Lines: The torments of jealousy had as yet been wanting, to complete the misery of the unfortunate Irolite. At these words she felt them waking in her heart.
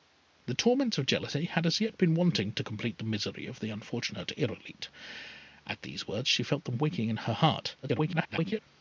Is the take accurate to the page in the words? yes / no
no